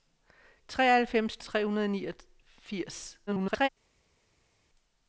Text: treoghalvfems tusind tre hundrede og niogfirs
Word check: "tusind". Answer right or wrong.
wrong